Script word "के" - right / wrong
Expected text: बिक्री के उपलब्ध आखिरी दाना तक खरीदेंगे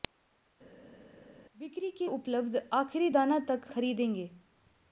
right